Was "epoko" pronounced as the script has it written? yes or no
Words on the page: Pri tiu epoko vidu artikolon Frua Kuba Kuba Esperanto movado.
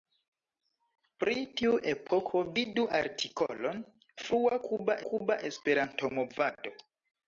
yes